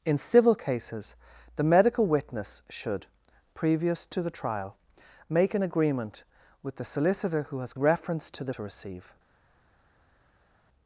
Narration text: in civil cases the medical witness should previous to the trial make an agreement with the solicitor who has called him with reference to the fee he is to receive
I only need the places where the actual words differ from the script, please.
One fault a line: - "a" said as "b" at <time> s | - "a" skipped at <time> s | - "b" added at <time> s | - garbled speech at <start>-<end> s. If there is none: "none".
- "called him with" skipped at 7.7 s
- "fee he is" skipped at 8.5 s